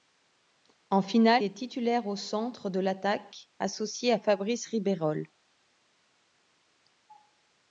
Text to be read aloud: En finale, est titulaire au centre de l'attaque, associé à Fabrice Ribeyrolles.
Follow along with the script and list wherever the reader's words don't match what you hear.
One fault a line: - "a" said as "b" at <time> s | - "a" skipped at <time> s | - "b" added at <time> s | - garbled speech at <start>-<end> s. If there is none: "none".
none